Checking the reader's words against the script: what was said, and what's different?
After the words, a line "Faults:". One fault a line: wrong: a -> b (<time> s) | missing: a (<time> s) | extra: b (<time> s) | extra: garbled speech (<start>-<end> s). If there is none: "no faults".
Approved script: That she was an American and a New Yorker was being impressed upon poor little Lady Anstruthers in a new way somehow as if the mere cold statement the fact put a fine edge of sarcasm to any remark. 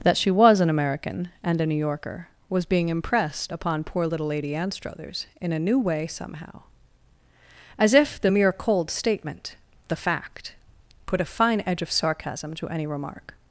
That she was an American and a New Yorker was being impressed upon poor little Lady Anstruthers in a new way somehow as if the mere cold statement the fact put a fine edge of sarcasm to any remark.
Faults:
no faults